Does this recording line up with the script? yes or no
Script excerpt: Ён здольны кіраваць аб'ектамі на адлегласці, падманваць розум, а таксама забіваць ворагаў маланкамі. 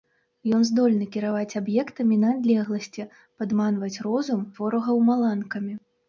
no